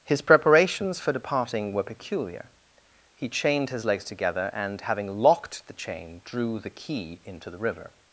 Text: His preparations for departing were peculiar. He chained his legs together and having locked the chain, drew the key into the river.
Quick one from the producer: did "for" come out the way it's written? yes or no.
yes